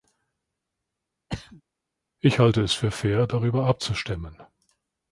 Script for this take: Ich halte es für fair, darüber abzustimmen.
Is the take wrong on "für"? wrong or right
right